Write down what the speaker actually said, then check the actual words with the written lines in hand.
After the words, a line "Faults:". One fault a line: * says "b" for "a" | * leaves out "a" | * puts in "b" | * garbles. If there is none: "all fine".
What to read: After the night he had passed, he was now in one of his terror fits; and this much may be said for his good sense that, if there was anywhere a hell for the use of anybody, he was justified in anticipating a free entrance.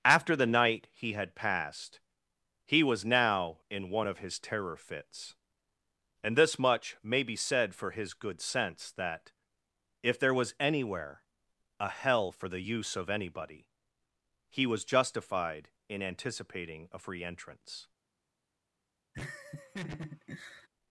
After the night he had passed, he was now in one of his terror fits; and this much may be said for his good sense that, if there was anywhere a hell for the use of anybody, he was justified in anticipating a free entrance.
Faults:
all fine